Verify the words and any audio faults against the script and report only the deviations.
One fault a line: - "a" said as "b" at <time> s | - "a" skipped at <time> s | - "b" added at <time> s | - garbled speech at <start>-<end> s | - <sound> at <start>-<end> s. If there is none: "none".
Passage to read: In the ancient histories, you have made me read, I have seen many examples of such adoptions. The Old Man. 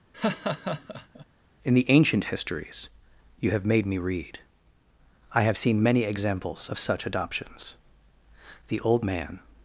- laugh at 0.1-1.3 s